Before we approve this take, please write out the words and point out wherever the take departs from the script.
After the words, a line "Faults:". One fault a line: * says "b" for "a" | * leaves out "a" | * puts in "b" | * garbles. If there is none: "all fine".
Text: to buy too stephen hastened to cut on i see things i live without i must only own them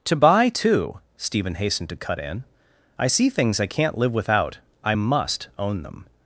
to buy too stephen hastened to cut in i see things i can't live without i must own them
Faults:
* says "in" for "on"
* puts in "can't"
* leaves out "only"